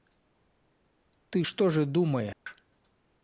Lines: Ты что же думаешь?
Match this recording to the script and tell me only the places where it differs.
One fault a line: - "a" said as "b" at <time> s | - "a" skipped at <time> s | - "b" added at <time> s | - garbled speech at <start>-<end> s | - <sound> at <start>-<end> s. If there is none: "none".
- dropout at 2.3-2.5 s